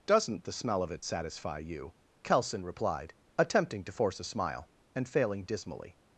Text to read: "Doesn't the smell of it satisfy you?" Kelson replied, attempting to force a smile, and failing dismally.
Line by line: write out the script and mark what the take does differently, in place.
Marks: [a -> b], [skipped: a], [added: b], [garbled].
"Doesn't the smell of it satisfy you?" Kelson replied, attempting to force a smile, and failing dismally.